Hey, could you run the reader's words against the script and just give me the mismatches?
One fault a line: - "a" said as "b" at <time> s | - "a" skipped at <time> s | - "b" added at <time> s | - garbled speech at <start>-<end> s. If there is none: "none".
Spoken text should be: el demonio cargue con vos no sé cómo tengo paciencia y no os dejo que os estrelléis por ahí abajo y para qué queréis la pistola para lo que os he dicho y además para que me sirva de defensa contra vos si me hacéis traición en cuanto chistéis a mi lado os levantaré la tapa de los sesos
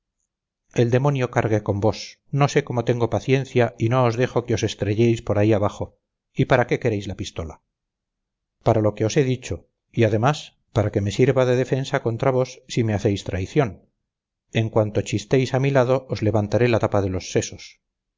none